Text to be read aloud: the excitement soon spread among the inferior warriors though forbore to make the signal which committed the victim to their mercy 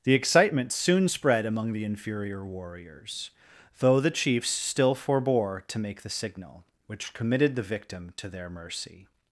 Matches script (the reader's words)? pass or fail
fail